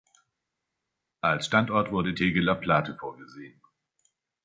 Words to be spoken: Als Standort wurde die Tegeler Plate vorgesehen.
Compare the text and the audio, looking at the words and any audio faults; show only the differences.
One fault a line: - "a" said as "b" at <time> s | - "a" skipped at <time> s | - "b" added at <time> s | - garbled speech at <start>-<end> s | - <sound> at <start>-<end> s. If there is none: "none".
- "die" skipped at 2.1 s